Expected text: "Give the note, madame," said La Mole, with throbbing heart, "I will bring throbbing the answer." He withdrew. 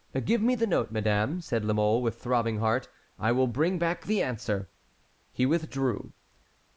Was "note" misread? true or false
false